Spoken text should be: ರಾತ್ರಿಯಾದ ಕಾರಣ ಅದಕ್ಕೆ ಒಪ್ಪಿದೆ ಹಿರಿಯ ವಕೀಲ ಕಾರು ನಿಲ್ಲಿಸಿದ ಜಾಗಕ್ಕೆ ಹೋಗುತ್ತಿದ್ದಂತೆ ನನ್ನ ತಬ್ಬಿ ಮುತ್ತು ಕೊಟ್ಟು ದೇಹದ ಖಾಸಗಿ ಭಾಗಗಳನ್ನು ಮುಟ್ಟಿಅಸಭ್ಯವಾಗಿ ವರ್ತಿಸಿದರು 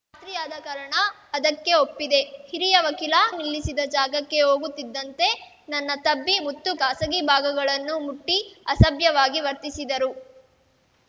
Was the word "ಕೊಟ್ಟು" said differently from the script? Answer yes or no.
yes